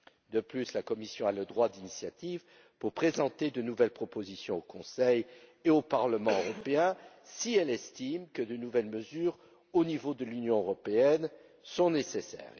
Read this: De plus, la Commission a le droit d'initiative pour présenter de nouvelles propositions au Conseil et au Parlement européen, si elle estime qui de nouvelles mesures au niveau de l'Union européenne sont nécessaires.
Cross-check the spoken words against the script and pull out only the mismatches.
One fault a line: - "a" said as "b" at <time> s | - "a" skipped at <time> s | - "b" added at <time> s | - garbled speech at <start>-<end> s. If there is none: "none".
- "qui" said as "que" at 8.3 s